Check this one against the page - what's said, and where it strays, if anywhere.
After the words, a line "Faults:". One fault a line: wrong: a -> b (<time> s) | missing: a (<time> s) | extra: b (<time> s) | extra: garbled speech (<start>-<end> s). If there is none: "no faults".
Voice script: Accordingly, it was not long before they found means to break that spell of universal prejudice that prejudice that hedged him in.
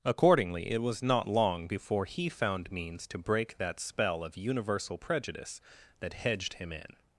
Accordingly, it was not long before he found means to break that spell of universal prejudice that hedged him in.
Faults:
wrong: they -> he (2.0 s)
missing: prejudice that (6.1 s)